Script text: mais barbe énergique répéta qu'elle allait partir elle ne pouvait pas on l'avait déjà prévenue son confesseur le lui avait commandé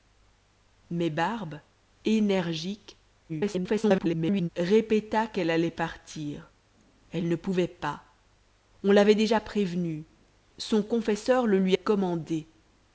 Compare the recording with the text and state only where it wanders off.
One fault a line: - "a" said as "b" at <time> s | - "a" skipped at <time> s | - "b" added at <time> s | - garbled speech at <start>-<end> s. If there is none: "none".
- garbled speech at 3.3-4.5 s
- "avait" skipped at 11.8 s